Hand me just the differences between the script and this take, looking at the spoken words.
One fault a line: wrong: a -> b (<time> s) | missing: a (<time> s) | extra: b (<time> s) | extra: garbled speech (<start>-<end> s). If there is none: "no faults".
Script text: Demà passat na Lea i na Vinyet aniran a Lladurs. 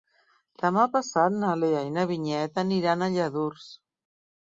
no faults